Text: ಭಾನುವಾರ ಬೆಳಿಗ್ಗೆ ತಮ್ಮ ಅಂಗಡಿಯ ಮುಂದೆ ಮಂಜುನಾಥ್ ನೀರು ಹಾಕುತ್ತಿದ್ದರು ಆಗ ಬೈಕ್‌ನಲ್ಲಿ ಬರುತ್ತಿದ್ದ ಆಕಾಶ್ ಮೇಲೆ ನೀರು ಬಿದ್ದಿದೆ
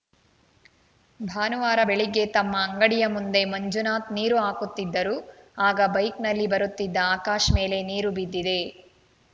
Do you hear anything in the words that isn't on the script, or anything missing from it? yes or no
no